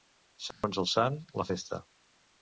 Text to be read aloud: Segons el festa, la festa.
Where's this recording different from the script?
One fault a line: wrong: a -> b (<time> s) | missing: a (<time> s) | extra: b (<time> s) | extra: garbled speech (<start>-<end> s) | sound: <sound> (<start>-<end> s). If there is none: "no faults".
sound: dropout (0.5-0.6 s)
wrong: festa -> sant (0.9 s)